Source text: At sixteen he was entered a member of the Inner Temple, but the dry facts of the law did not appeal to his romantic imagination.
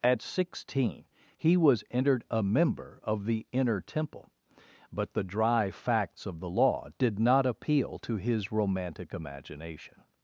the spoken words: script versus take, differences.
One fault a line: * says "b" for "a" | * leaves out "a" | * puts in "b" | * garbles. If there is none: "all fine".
all fine